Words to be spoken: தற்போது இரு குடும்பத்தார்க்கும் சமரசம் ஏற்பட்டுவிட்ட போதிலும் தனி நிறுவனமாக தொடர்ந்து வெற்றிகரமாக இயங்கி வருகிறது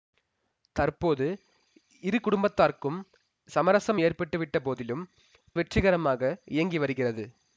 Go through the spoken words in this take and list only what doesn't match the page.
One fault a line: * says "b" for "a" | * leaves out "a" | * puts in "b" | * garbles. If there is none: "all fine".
* leaves out "தனி நிறுவனமாக தொடர்ந்து"